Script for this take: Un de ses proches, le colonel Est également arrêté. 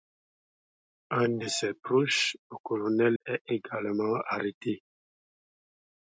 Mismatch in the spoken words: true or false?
false